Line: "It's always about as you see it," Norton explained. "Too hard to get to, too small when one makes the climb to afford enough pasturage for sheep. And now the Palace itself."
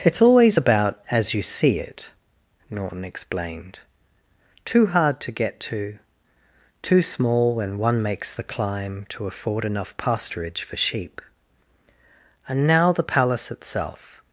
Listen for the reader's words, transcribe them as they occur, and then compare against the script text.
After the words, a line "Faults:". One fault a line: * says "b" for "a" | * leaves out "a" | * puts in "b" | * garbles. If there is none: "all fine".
"It's always about as you see it," Norton explained. "Too hard to get to, too small when one makes the climb to afford enough pasturage for sheep. And now the Palace itself."
Faults:
all fine